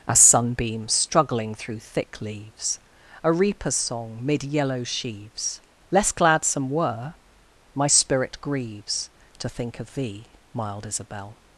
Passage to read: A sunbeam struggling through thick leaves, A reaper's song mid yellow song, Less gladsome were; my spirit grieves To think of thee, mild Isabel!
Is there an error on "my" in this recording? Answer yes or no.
no